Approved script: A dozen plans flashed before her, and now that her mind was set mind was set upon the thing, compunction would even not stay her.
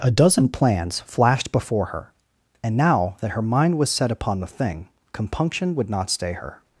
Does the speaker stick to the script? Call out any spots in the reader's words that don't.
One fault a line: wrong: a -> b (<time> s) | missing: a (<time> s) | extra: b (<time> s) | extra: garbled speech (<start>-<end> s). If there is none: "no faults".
missing: mind was set (4.1 s)
missing: even (5.9 s)